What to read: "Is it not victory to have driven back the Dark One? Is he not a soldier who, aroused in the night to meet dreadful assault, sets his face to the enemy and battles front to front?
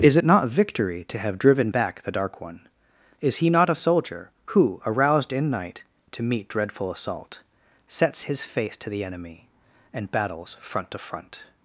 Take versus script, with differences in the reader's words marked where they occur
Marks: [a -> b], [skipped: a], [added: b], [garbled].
"Is it not victory to have driven back the Dark One? Is he not a soldier who, aroused in [skipped: the] night to meet dreadful assault, sets his face to the enemy and battles front to front?